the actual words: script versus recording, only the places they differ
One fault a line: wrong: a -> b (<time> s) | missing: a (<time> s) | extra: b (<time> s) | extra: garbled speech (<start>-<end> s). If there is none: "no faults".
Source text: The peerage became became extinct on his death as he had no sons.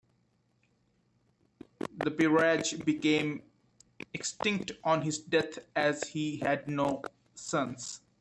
missing: became (3.4 s)